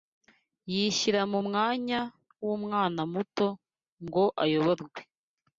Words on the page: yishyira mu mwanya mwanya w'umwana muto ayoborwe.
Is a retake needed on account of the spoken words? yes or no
yes